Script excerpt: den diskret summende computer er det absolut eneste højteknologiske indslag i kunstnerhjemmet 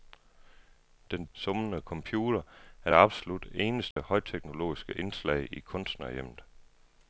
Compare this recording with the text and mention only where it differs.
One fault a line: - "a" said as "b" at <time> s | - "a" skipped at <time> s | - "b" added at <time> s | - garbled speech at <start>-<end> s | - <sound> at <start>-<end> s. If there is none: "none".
- "diskret" skipped at 1.2 s
- dropout at 3.9-4.0 s